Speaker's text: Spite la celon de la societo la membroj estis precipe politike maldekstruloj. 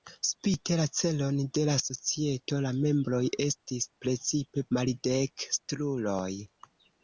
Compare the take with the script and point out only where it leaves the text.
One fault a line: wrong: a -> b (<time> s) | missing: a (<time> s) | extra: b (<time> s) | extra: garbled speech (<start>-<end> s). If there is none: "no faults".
missing: politike (4.7 s)